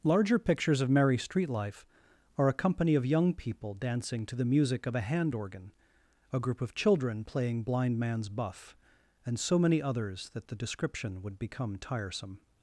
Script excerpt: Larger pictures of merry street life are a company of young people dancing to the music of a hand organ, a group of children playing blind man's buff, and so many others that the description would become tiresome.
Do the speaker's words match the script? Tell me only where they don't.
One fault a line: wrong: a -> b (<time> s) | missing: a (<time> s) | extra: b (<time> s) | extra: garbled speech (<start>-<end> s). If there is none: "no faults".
no faults